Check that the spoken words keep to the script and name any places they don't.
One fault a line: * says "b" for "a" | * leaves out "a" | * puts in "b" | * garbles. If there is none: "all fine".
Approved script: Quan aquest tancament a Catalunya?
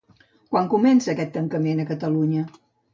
* puts in "comença"